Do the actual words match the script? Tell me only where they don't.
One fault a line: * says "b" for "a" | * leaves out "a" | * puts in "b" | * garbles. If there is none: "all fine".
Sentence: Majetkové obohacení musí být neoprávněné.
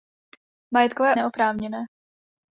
* leaves out "obohacení musí být"